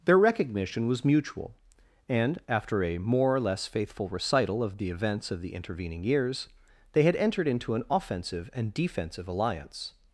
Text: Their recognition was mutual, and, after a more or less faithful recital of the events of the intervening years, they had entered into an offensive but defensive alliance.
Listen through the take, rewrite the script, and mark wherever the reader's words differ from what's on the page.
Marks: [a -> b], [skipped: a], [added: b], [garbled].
Their recognition was mutual, and, after a more or less faithful recital of the events of the intervening years, they had entered into an offensive [but -> and] defensive alliance.